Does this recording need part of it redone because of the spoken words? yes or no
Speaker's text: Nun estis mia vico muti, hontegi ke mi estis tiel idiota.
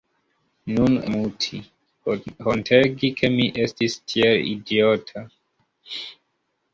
yes